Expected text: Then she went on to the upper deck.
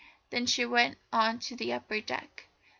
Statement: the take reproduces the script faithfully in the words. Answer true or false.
true